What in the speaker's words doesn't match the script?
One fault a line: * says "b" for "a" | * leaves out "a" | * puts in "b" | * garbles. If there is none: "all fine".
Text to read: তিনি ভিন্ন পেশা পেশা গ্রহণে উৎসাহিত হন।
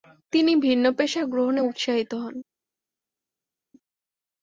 * leaves out "পেশা"